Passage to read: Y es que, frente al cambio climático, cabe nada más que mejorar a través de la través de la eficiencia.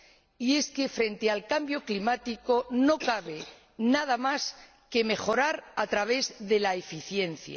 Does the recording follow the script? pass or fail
fail